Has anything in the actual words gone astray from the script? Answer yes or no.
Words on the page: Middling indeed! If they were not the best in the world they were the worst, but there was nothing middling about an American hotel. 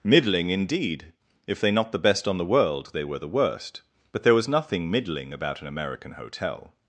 yes